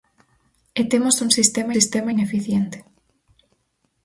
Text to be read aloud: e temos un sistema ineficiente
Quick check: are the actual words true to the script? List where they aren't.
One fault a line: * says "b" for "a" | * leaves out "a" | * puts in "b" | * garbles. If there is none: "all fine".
* puts in "sistema"